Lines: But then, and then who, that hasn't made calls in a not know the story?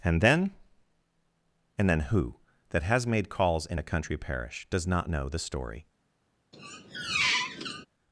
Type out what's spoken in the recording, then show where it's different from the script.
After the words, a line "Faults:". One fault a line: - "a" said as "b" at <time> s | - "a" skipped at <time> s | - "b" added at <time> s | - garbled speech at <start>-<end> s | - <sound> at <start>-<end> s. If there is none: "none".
And then, and then who, that has made calls in a country parish, does not know the story?
Faults:
- "But" said as "And" at 0.0 s
- "hasn't" said as "has" at 2.8 s
- "country parish does" added at 3.8 s
- squeak at 6.5-7.9 s